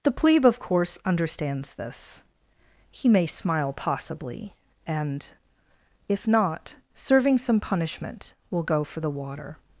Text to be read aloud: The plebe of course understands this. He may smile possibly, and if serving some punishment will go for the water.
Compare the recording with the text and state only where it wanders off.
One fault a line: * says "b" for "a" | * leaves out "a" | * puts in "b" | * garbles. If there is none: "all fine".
* puts in "not"